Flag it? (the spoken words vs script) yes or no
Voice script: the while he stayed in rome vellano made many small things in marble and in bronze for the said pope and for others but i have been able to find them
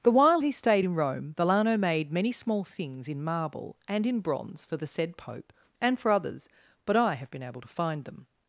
no